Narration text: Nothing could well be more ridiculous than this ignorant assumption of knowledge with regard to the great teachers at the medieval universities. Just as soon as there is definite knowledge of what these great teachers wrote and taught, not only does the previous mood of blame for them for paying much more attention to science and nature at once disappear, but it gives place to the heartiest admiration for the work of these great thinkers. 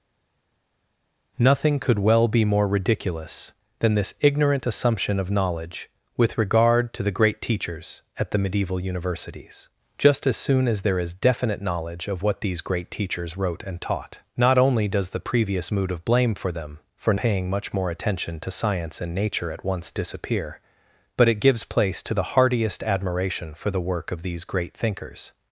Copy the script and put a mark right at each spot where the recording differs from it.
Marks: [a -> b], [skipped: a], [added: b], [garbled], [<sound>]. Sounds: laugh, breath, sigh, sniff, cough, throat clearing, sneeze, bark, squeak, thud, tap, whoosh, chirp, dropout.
Nothing could well be more ridiculous than this ignorant assumption of knowledge with regard to the great teachers at the medieval universities. Just as soon as there is definite knowledge of what these great teachers wrote and taught, not only does the previous mood of blame for them for paying much more attention to science and nature at once disappear, but it gives place to the heartiest admiration for the work of these great thinkers.